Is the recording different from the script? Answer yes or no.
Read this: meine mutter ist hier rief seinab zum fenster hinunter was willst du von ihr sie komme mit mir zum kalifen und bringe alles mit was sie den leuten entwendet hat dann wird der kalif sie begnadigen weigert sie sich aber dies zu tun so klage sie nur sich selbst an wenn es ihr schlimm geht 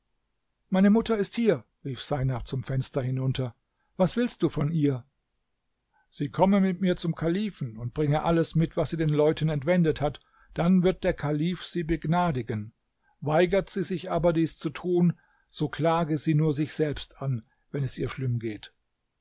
no